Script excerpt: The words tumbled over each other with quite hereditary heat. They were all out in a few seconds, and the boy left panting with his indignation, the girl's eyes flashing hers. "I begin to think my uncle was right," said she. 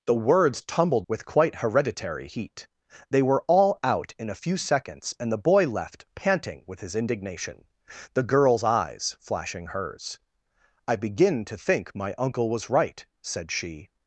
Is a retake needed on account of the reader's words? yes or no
yes